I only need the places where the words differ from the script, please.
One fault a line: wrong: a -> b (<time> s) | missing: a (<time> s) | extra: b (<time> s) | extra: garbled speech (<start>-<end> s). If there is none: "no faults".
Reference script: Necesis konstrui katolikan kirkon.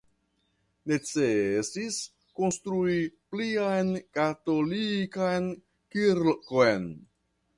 extra: plian (3.3 s)